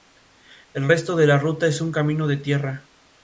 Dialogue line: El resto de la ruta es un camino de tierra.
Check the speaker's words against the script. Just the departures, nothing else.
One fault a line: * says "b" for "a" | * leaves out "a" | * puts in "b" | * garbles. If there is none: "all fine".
all fine